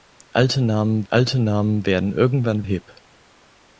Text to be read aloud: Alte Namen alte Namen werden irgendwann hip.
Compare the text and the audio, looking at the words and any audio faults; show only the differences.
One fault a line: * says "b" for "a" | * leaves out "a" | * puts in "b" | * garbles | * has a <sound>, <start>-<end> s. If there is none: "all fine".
all fine